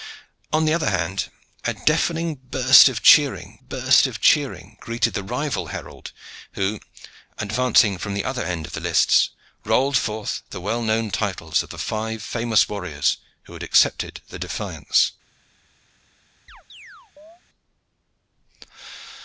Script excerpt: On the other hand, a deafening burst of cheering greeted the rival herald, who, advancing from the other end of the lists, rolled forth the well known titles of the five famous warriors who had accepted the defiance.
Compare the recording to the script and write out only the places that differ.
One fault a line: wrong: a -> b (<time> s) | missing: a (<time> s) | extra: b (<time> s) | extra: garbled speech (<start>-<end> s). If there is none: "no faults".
extra: burst of cheering (3.7 s)